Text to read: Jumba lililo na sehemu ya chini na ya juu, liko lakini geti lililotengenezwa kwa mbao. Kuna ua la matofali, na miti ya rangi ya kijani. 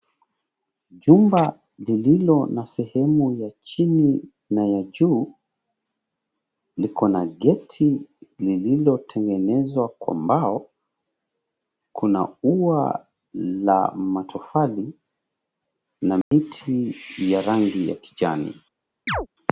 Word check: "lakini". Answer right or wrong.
wrong